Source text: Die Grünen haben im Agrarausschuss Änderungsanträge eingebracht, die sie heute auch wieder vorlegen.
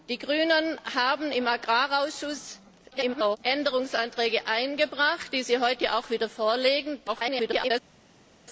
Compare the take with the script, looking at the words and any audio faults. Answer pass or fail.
fail